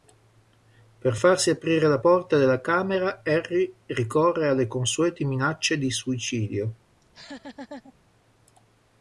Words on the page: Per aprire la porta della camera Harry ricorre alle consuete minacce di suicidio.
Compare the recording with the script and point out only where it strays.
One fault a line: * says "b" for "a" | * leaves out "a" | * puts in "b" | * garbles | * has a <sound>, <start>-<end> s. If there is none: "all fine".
* puts in "farsi"
* has a laugh, 7.0-7.9 s